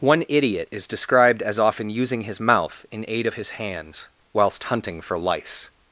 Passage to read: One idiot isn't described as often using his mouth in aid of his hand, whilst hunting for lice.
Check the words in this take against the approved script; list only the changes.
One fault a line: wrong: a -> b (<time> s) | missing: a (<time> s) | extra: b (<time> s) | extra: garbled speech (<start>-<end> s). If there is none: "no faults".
wrong: isn't -> is (0.7 s)
wrong: hand -> hands (3.6 s)